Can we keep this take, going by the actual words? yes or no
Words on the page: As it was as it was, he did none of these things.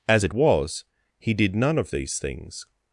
no